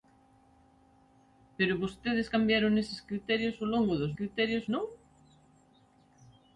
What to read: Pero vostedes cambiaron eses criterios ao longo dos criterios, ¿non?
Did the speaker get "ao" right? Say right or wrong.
right